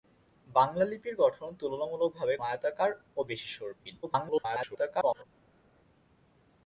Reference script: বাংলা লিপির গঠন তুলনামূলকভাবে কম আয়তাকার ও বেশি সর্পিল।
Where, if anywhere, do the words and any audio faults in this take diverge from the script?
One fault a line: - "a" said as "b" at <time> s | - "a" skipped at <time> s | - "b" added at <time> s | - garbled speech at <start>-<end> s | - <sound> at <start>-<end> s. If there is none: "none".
- "কম" skipped at 2.4 s
- garbled speech at 4.0-5.2 s